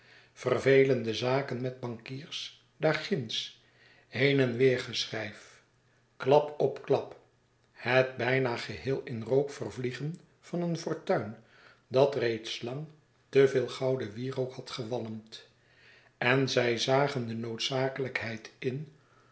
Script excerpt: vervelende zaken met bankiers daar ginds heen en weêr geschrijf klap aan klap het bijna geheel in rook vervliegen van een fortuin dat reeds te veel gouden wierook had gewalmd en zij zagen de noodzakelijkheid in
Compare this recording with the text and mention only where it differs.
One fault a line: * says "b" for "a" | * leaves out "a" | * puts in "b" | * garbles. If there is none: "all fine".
* says "op" for "aan"
* puts in "lang"